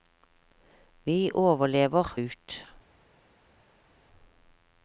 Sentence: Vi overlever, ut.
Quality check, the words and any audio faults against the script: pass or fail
pass